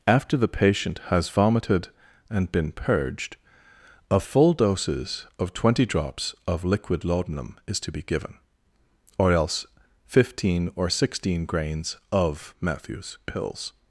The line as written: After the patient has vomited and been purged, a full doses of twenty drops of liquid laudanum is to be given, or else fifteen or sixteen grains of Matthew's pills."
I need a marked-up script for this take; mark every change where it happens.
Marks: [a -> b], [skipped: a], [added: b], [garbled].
After the patient has vomited and been purged, a full doses of twenty drops of liquid laudanum is to be given, or else fifteen or sixteen grains of Matthew's pills."